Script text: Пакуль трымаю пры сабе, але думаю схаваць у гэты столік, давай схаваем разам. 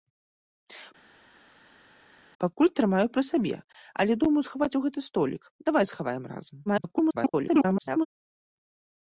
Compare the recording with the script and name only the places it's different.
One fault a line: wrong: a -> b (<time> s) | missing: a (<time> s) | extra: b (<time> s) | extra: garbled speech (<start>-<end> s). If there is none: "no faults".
extra: garbled speech (6.7-8.1 s)